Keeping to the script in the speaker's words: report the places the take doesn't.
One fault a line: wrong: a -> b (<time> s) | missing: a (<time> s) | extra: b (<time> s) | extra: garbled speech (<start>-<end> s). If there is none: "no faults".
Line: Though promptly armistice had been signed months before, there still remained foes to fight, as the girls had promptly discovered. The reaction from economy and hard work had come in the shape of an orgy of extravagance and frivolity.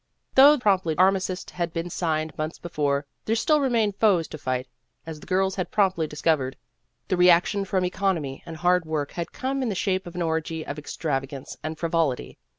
no faults